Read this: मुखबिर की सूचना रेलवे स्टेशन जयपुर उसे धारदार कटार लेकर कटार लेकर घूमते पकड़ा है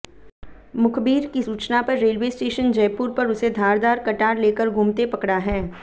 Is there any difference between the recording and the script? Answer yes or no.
yes